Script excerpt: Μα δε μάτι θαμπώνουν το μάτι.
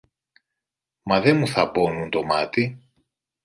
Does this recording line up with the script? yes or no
no